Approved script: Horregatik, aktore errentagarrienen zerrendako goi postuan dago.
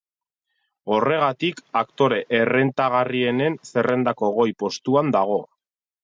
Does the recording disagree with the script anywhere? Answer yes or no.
no